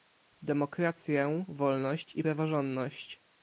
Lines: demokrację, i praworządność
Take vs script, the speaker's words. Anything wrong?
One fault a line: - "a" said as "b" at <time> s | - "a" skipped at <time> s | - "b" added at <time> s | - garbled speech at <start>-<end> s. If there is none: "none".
- "wolność" added at 1.5 s